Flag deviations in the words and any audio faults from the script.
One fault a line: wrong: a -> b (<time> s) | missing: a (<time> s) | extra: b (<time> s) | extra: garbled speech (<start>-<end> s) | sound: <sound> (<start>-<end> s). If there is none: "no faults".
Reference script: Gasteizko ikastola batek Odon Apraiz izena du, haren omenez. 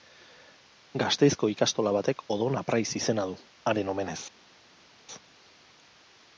no faults